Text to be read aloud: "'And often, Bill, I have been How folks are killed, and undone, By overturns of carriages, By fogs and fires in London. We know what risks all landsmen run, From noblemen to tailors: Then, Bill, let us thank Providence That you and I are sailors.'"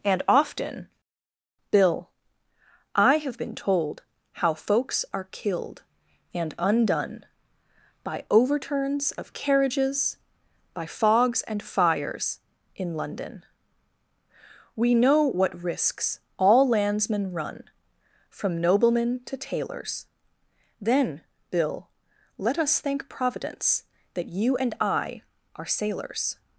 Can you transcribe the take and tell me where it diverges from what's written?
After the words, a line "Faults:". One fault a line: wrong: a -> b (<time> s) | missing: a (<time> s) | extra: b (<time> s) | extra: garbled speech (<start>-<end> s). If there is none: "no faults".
"'And often, Bill, I have been told How folks are killed, and undone, By overturns of carriages, By fogs and fires in London. We know what risks all landsmen run, From noblemen to tailors: Then, Bill, let us thank Providence That you and I are sailors.'"
Faults:
extra: told (3.6 s)